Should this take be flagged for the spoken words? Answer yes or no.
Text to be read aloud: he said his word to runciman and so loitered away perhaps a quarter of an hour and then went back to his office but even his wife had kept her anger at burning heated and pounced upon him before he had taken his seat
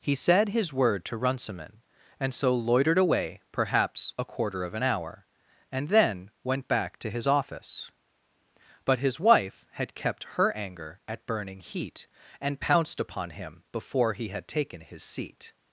yes